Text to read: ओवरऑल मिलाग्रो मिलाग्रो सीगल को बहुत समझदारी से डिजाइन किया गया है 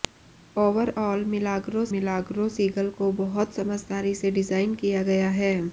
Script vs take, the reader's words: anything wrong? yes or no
no